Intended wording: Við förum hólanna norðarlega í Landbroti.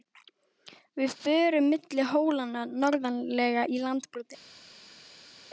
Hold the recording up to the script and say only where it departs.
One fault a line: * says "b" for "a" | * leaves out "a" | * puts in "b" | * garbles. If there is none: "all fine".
* puts in "milli"